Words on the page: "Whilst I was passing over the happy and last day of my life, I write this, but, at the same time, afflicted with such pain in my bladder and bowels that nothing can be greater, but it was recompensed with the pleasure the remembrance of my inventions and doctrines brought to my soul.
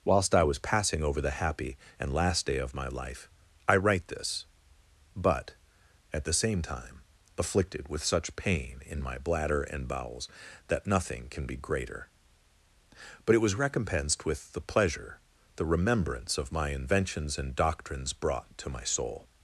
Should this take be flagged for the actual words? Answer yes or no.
no